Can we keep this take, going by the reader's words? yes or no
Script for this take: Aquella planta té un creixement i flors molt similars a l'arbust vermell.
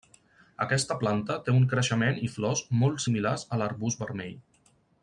no